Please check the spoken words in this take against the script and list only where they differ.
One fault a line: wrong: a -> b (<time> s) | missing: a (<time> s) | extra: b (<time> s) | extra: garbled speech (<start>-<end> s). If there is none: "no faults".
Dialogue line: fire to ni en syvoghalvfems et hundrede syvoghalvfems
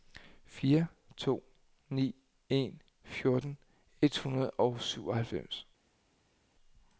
wrong: syvoghalvfems -> fjorten (3.0 s)
extra: og (4.5 s)